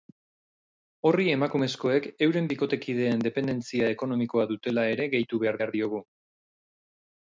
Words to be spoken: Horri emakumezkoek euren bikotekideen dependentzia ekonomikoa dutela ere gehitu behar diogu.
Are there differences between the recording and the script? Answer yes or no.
yes